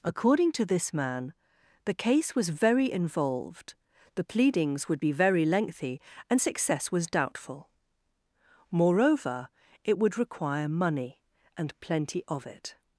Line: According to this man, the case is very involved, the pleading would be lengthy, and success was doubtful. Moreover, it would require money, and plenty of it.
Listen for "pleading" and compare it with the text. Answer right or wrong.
wrong